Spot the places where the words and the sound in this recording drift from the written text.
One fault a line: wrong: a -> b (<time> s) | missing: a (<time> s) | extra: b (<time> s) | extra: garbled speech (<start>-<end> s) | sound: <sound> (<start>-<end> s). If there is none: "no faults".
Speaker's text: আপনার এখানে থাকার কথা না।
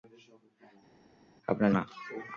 missing: এখানে থাকার কথা (1.7 s)